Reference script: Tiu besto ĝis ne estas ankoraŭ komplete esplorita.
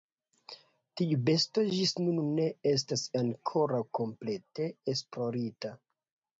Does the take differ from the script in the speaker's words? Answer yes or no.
yes